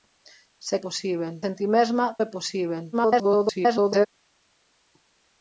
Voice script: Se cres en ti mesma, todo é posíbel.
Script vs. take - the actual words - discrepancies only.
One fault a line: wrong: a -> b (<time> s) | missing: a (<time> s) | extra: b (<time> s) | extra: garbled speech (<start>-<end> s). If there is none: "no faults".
wrong: cres -> posíbel (0.9 s)
missing: todo (2.1 s)
extra: garbled speech (2.9-4.1 s)